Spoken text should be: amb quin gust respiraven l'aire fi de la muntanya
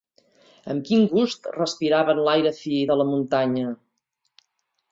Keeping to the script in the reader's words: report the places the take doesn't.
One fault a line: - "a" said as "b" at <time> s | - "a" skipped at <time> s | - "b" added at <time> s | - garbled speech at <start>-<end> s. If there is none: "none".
none